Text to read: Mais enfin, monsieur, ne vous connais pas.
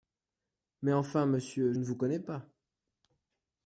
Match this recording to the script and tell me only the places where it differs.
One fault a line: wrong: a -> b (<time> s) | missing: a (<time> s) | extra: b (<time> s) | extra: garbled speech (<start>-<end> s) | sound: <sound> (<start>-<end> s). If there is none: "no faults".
no faults